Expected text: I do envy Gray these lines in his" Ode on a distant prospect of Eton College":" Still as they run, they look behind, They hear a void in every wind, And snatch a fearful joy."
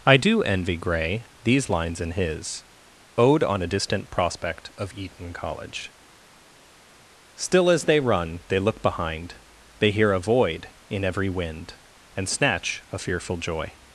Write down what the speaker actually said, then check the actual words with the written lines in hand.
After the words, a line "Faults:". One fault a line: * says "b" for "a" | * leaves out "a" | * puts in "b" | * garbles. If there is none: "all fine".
I do envy Gray these lines in his" Ode on a distant prospect of Eton College":" Still as they run, they look behind, They hear a void in every wind, And snatch a fearful joy."
Faults:
all fine